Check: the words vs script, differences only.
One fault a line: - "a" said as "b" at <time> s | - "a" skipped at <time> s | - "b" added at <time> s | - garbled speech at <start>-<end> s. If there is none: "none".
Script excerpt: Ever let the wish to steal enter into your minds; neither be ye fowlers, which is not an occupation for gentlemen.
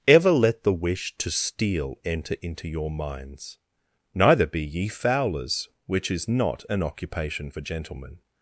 none